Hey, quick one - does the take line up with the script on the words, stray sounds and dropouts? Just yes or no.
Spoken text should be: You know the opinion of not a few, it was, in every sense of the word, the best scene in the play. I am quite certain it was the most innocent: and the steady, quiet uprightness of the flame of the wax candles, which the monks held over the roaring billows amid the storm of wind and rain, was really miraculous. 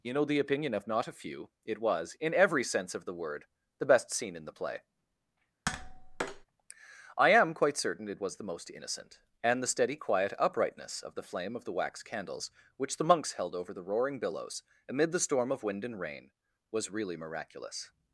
no